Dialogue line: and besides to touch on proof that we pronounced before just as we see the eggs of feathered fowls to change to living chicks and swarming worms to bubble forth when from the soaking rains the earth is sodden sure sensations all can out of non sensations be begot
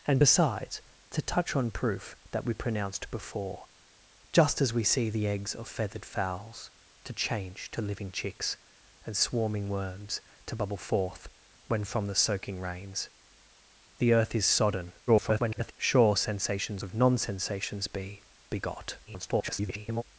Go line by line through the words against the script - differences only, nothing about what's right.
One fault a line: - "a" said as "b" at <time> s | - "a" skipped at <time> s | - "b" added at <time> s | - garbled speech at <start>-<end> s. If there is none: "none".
- garbled speech at 15.1-15.7 s
- "all can out" skipped at 16.8 s
- garbled speech at 19.1-20.0 s